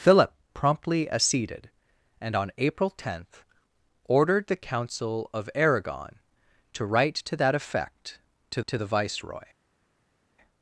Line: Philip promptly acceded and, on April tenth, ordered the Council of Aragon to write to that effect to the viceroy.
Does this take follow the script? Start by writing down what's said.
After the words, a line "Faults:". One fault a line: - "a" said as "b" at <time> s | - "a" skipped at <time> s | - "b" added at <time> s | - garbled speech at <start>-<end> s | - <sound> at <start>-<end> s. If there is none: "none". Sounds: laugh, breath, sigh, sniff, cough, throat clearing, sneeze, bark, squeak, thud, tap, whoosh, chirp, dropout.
Philip promptly acceded and, on April tenth, ordered the Council of Aragon to write to that effect to to the viceroy.
Faults:
- "to" added at 8.7 s